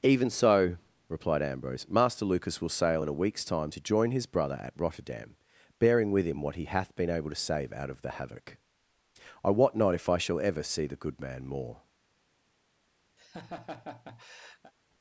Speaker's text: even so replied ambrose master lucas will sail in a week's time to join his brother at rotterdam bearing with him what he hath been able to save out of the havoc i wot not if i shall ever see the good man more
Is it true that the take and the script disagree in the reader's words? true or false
false